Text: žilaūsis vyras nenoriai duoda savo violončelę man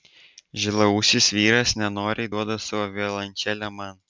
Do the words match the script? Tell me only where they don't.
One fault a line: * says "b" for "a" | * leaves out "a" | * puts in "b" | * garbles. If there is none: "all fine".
all fine